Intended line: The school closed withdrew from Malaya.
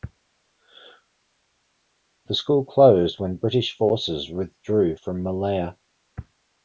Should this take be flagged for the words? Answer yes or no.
yes